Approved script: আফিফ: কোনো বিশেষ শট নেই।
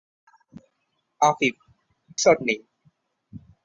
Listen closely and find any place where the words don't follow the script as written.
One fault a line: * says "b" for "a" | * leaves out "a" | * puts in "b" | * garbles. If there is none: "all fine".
* leaves out "কোনো বিশেষ"